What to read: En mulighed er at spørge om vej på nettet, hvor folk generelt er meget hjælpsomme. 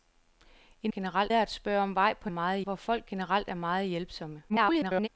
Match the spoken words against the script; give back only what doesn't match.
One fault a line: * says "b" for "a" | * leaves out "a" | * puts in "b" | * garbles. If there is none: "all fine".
* says "generelt" for "mulighed"
* says "meget" for "nettet"
* garbles